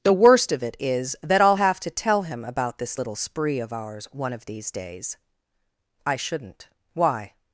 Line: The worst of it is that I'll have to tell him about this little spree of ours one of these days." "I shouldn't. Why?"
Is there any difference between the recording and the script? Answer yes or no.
no